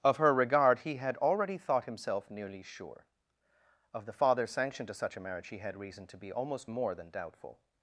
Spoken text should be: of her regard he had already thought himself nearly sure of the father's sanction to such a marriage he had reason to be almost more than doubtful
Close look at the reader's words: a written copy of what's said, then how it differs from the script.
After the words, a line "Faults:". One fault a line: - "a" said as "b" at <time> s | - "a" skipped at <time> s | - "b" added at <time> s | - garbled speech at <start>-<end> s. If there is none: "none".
of her regard he had already thought himself nearly sure of the father's sanction to such a marriage he had reason to be almost more than doubtful
Faults:
none